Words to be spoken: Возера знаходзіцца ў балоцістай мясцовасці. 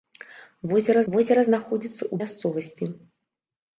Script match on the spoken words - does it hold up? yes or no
no